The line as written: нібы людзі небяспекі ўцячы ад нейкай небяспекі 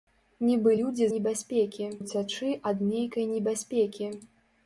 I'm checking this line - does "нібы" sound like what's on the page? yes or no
yes